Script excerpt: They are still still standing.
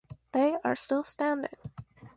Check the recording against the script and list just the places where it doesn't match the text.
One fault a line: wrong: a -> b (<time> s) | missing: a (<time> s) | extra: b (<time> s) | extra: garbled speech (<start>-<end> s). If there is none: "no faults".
missing: still (1.0 s)